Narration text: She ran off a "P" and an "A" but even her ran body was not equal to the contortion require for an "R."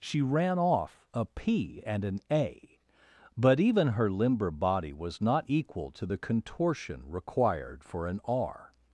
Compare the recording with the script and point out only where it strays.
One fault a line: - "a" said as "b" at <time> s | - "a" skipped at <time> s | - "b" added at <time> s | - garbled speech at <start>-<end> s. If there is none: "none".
- "ran" said as "limber" at 4.1 s
- "require" said as "required" at 7.1 s